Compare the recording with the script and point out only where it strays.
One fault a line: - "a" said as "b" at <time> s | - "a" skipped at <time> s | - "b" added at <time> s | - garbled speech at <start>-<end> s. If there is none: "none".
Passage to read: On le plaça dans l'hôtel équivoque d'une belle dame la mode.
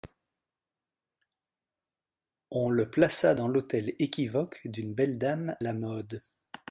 none